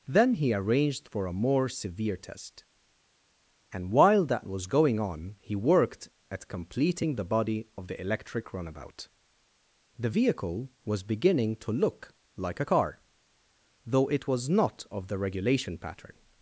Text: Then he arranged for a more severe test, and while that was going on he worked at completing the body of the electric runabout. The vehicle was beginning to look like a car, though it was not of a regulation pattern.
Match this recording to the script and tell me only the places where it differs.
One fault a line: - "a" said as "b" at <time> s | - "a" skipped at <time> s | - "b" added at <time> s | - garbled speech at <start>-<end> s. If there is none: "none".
- "a" said as "the" at 15.1 s